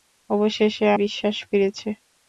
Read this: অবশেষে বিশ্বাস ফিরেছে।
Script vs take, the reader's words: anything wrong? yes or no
no